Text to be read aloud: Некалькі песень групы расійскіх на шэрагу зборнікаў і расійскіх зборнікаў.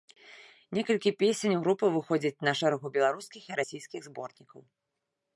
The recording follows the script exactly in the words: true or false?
false